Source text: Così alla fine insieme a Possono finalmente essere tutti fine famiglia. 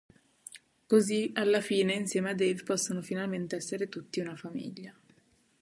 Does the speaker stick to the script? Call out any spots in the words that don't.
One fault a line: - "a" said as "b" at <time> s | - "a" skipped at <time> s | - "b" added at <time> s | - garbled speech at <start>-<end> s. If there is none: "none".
- "Dave" added at 2.3 s
- "fine" said as "una" at 4.2 s